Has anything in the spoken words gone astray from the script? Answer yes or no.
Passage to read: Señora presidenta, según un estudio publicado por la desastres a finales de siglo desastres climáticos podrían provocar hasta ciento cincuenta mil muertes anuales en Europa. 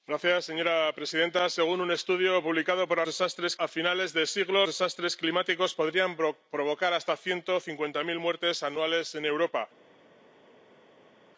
no